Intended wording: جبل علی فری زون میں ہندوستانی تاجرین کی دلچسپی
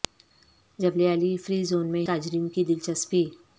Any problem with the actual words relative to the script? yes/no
yes